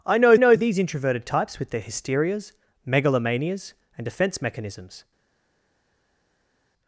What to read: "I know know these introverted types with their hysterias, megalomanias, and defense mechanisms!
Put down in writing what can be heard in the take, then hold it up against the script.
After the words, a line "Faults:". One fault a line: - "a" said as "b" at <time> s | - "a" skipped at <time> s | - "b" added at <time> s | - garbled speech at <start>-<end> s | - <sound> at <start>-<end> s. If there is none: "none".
"I know know these introverted types with their hysterias, megalomanias, and defense mechanisms!
Faults:
none